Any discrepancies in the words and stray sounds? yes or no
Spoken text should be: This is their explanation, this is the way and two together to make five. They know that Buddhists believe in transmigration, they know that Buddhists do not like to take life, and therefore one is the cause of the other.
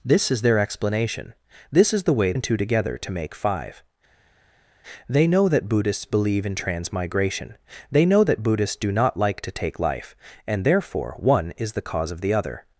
no